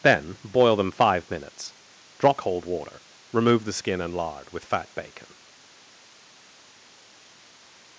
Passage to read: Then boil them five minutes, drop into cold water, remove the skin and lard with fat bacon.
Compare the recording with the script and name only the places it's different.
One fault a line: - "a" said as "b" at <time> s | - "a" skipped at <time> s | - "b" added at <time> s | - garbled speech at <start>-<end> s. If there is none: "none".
- "into" skipped at 2.4 s